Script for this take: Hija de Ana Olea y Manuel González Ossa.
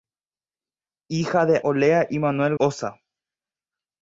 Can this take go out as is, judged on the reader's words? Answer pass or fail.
fail